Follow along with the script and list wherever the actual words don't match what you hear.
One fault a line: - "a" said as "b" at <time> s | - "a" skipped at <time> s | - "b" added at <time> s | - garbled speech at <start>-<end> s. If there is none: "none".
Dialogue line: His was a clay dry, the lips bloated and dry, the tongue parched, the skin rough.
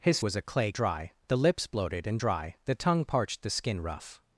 none